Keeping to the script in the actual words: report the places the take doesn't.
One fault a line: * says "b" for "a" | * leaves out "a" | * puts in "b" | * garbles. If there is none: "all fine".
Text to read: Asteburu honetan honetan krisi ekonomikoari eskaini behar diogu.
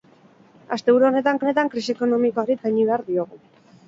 all fine